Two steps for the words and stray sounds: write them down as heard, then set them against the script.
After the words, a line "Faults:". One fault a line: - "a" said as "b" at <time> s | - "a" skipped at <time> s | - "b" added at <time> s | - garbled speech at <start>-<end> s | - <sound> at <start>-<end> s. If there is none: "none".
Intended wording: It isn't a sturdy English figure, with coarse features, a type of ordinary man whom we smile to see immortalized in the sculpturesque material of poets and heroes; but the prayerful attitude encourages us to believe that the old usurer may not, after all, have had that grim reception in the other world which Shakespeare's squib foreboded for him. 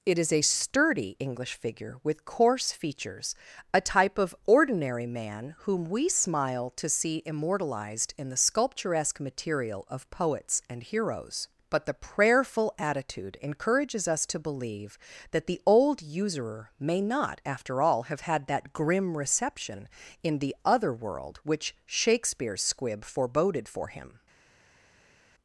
It is a sturdy English figure, with coarse features, a type of ordinary man whom we smile to see immortalized in the sculpturesque material of poets and heroes; but the prayerful attitude encourages us to believe that the old usurer may not, after all, have had that grim reception in the other world which Shakespeare's squib foreboded for him.
Faults:
- "isn't" said as "is" at 0.2 s